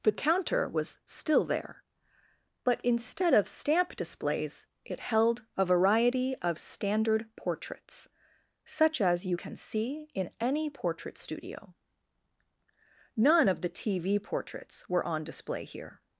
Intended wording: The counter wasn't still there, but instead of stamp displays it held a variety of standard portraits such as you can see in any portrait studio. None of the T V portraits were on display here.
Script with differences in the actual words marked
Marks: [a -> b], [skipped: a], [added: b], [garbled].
The counter [wasn't -> was] still there, but instead of stamp displays it held a variety of standard portraits such as you can see in any portrait studio. None of the T V portraits were on display here.